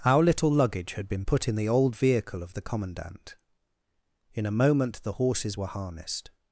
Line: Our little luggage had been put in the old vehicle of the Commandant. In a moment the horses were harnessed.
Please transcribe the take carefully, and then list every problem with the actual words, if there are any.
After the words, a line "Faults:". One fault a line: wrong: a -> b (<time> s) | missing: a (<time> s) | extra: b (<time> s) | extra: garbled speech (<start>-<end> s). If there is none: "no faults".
Our little luggage had been put in the old vehicle of the Commandant. In a moment the horses were harnessed.
Faults:
no faults